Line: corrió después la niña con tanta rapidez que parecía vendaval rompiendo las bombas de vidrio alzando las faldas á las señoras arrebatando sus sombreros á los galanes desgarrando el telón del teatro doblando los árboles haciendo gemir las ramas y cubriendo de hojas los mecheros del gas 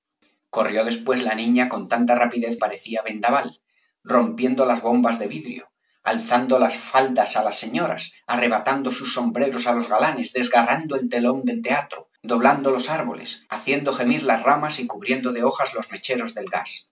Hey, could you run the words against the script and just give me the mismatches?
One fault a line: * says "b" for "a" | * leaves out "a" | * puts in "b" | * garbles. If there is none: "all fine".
* leaves out "que"